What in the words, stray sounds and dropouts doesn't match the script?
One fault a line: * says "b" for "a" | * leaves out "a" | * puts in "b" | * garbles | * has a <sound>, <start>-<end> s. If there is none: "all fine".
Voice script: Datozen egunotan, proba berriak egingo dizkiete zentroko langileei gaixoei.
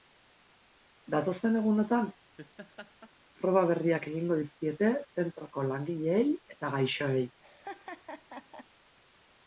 * has a laugh, 2.4-3.1 s
* puts in "eta"
* has a laugh, 7.4-8.7 s